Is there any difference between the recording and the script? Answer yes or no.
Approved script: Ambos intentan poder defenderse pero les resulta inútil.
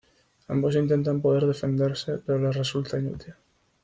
no